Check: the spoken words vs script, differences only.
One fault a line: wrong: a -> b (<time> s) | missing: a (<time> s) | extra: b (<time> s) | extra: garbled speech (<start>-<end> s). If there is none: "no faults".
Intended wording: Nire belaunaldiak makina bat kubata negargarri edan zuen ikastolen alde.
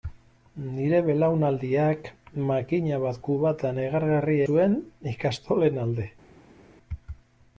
missing: edan (4.4 s)